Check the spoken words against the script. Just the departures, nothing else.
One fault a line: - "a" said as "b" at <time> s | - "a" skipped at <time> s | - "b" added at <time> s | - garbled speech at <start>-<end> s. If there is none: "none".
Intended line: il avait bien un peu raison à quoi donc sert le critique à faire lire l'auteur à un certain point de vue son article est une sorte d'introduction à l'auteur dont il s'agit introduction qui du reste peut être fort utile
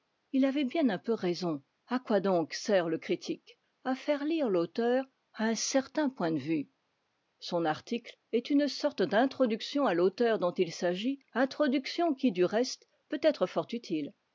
none